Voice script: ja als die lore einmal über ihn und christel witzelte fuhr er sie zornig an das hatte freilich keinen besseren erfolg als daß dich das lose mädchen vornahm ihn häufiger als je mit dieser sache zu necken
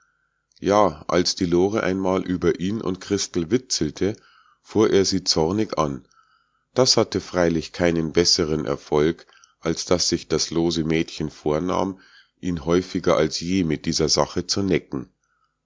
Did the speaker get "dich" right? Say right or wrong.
wrong